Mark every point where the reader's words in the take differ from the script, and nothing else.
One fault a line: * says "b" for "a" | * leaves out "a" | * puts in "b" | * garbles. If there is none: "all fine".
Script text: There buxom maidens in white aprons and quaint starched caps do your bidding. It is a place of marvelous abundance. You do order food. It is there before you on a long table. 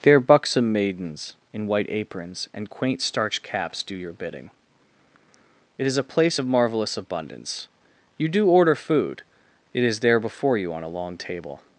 all fine